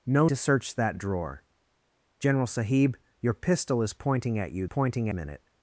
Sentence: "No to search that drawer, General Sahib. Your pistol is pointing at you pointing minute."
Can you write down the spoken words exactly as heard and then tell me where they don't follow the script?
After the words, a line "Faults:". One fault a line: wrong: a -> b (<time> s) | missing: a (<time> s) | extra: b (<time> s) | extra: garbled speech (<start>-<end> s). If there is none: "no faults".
"No to search that drawer, General Sahib. Your pistol is pointing at you pointing minute."
Faults:
no faults